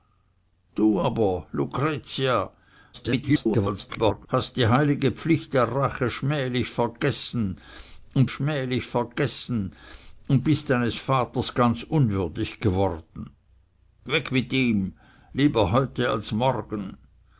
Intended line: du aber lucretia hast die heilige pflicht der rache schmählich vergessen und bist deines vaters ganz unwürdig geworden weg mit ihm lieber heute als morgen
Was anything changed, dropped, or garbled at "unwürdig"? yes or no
no